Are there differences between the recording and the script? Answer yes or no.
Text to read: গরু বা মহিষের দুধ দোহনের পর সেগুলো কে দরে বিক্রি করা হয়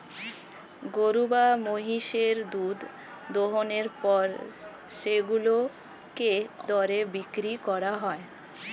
no